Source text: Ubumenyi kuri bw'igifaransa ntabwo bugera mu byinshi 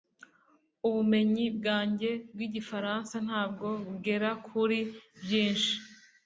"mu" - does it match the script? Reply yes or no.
no